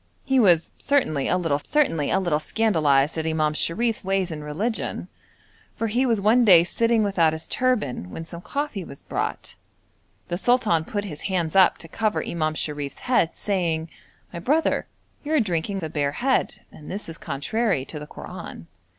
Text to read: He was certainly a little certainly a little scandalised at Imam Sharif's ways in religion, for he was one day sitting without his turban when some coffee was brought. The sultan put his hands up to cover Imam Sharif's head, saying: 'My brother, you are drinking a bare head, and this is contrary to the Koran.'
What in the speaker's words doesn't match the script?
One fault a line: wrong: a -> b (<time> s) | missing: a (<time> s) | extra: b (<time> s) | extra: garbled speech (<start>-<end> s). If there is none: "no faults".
no faults